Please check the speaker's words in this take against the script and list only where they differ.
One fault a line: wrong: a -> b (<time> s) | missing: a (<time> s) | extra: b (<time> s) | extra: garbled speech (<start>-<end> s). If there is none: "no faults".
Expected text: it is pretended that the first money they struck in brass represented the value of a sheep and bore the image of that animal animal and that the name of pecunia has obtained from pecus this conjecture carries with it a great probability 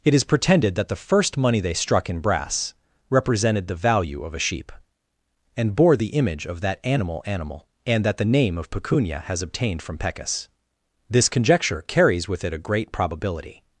no faults